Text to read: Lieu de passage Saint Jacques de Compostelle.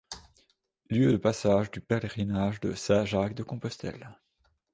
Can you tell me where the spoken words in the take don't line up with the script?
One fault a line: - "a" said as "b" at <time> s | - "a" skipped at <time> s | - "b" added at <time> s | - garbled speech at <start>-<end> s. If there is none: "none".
- "du pèlerinage de" added at 1.7 s